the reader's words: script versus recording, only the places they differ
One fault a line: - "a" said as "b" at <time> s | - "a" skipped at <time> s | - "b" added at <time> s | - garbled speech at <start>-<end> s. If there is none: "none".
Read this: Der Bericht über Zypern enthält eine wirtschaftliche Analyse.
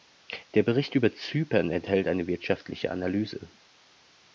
none